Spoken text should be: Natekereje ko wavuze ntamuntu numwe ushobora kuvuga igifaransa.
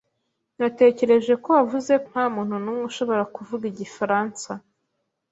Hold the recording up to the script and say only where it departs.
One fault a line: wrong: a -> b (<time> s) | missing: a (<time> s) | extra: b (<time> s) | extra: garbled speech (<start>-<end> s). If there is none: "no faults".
no faults